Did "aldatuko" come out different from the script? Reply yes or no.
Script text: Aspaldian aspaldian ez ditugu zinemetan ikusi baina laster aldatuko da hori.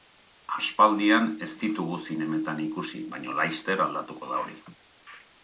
no